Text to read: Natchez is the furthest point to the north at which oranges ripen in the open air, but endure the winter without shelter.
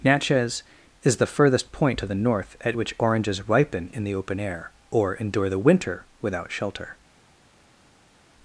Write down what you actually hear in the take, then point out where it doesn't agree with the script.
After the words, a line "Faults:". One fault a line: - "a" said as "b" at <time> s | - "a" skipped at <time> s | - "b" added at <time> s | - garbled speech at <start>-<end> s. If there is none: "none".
Natchez is the furthest point to the north at which oranges ripen in the open air, or endure the winter without shelter.
Faults:
- "but" said as "or" at 4.9 s